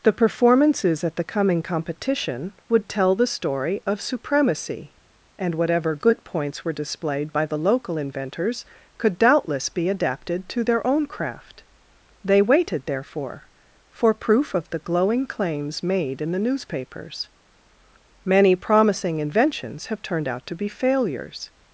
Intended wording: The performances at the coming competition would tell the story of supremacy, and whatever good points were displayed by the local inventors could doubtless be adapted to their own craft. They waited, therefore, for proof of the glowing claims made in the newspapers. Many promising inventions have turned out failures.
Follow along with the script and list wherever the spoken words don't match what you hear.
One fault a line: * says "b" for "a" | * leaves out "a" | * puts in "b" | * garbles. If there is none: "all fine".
* puts in "to be"